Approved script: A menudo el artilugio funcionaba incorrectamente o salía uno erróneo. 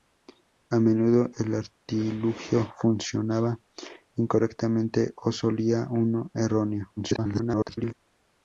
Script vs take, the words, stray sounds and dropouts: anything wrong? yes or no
yes